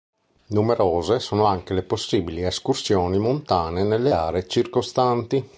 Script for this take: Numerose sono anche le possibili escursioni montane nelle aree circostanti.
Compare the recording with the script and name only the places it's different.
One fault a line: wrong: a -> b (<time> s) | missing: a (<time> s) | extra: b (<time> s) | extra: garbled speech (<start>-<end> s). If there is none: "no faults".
no faults